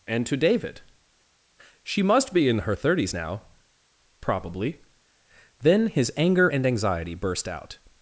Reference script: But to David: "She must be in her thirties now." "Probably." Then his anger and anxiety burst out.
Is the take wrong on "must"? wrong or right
right